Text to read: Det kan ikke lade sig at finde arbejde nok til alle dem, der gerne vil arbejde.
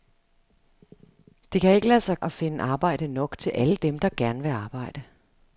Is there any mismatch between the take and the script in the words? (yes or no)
no